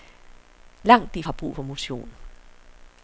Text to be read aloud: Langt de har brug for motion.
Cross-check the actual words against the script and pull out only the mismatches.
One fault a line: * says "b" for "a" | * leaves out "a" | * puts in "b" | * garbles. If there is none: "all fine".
all fine